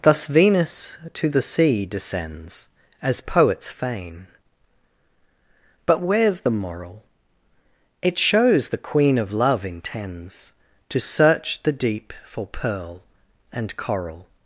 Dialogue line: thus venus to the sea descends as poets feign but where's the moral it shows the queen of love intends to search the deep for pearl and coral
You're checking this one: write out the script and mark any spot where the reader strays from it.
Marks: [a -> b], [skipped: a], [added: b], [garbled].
thus venus to the sea descends as poets feign but where's the moral it shows the queen of love intends to search the deep for pearl and coral